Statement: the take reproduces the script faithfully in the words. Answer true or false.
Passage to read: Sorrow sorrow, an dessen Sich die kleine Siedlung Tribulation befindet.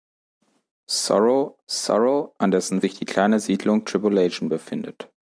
true